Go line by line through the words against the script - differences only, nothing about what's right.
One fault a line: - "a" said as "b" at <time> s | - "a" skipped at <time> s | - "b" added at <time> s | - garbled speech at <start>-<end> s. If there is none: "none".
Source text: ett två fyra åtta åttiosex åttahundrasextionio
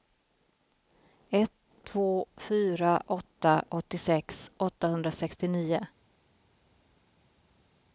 none